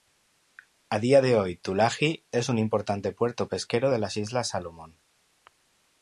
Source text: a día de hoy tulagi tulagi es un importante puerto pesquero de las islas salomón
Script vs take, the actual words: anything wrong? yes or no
yes